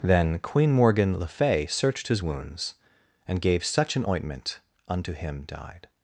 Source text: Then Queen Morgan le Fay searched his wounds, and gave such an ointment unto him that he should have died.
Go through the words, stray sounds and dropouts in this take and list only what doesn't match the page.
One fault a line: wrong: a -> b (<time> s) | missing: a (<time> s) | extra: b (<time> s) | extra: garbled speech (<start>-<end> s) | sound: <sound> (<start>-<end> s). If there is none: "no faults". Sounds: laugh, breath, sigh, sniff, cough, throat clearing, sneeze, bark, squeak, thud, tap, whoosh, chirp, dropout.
missing: that he should have (5.4 s)